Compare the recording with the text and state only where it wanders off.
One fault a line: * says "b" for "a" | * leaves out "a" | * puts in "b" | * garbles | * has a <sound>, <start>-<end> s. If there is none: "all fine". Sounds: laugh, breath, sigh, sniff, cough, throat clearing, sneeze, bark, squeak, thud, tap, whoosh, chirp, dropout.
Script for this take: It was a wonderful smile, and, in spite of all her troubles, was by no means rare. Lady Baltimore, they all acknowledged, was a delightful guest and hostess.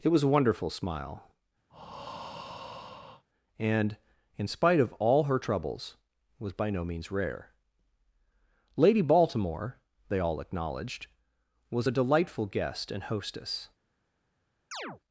* has a breath, 1.7-3.2 s
* has a chirp, 14.7-15.0 s